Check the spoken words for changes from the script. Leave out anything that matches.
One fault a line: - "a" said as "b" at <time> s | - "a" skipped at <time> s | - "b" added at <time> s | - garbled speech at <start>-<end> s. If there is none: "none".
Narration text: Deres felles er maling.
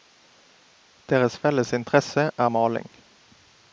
- "interesse" added at 1.7 s